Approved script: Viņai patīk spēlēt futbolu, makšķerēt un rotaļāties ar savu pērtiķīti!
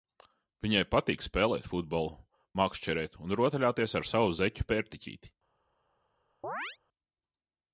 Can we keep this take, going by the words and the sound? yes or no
no